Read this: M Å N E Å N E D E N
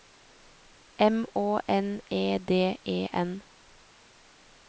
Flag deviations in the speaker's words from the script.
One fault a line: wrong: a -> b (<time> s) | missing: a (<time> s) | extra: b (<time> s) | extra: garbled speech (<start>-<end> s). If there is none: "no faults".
missing: Å N E (2.4 s)